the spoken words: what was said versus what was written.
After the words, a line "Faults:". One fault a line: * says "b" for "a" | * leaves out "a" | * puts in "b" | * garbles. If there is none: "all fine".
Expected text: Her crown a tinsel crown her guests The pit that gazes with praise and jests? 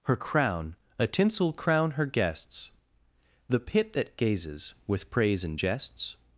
Her crown a tinsel crown her guests The pit that gazes with praise and jests?
Faults:
all fine